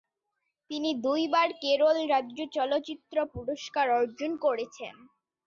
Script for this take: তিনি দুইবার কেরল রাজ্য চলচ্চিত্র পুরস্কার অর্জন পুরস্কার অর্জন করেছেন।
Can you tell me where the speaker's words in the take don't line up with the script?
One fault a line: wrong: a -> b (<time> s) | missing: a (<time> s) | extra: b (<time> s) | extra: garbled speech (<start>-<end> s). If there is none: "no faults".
missing: পুরস্কার অর্জন (4.3 s)